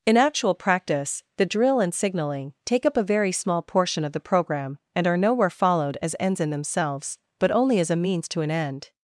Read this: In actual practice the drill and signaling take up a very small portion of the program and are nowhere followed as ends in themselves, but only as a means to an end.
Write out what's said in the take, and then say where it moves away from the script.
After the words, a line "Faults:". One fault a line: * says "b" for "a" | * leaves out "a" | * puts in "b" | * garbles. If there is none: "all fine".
In actual practice the drill and signaling take up a very small portion of the program and are nowhere followed as ends in themselves, but only as a means to an end.
Faults:
all fine